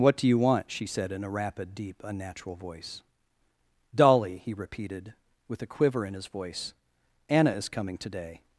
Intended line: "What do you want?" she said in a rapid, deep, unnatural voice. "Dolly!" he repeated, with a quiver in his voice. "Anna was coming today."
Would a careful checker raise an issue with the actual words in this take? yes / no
yes